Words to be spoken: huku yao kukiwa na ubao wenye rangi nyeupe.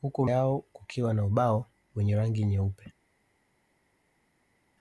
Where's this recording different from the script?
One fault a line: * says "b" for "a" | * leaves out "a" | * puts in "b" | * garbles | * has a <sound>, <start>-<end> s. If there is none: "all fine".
all fine